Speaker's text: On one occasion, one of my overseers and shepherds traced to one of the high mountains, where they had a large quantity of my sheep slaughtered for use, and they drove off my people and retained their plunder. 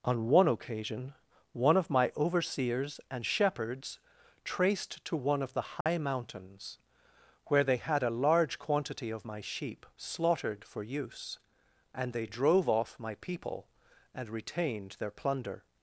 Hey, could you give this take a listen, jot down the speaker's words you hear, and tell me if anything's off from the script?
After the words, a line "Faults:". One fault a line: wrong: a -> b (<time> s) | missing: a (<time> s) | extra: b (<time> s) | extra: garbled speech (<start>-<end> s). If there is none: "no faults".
On one occasion, one of my overseers and shepherds traced to one of the high mountains, where they had a large quantity of my sheep slaughtered for use, and they drove off my people and retained their plunder.
Faults:
no faults